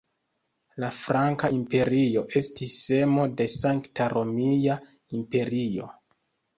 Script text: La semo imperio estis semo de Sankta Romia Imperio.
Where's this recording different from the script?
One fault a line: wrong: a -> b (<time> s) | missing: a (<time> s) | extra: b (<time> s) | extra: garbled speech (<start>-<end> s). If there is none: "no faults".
wrong: semo -> franka (1.0 s)